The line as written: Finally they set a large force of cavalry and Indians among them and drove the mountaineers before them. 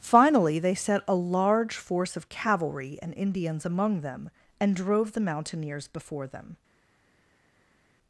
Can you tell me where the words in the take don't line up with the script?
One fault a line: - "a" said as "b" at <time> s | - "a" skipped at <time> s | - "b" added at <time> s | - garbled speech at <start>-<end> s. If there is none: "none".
none